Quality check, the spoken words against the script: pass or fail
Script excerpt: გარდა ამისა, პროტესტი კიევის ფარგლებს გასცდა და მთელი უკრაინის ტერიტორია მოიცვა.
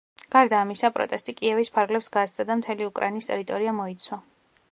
pass